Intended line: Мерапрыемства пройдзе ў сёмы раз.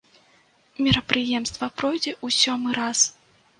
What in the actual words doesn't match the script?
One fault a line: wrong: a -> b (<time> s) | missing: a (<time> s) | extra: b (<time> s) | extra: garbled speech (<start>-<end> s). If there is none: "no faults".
no faults